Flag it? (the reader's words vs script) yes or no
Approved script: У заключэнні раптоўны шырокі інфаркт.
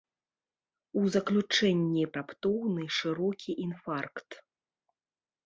no